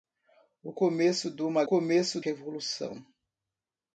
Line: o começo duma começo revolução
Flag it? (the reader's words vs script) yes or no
no